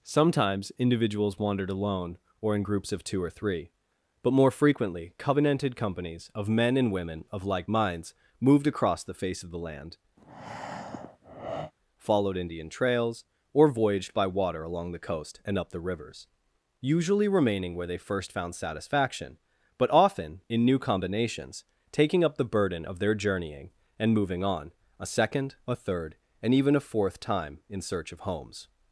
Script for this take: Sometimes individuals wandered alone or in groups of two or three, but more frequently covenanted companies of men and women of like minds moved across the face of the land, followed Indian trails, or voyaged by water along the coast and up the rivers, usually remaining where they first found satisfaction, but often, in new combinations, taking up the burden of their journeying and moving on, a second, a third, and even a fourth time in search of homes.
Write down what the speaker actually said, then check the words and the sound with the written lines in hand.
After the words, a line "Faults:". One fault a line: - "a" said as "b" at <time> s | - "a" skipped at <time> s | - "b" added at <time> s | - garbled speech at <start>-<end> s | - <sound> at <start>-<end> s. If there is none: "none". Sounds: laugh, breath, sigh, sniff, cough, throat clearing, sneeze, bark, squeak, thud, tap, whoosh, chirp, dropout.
Sometimes individuals wandered alone or in groups of two or three, but more frequently covenanted companies of men and women of like minds moved across the face of the land, followed Indian trails, or voyaged by water along the coast and up the rivers, usually remaining where they first found satisfaction, but often, in new combinations, taking up the burden of their journeying and moving on, a second, a third, and even a fourth time in search of homes.
Faults:
- breath at 10.2-11.7 s